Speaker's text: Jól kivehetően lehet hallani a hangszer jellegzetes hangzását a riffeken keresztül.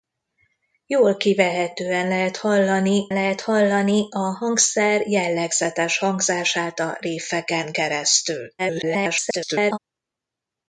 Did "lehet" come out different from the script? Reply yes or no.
no